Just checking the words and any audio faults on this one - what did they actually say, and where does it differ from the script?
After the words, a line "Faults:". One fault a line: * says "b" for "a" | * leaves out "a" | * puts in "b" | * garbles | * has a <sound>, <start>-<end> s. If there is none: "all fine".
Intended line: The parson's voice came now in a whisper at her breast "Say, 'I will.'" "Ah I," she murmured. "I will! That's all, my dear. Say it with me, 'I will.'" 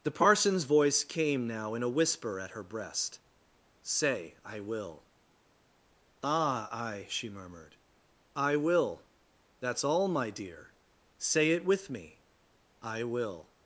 The parson's voice came now in a whisper at her breast "Say, 'I will.'" "Ah I," she murmured. "I will! That's all, my dear. Say it with me, 'I will.'"
Faults:
all fine